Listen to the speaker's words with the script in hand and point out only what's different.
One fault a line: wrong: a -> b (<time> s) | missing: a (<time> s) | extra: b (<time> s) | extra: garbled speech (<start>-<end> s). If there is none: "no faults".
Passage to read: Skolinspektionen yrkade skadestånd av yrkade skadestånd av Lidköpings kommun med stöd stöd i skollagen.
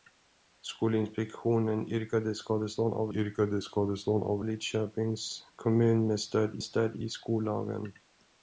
no faults